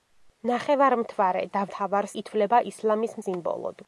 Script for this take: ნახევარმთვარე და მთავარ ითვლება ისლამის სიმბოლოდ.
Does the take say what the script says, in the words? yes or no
yes